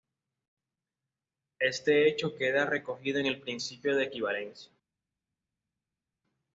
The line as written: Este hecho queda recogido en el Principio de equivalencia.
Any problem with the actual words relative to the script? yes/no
no